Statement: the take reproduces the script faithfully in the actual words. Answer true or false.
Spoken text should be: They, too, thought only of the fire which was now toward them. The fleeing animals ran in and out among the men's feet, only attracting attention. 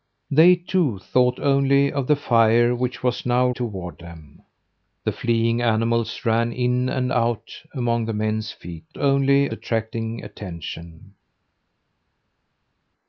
true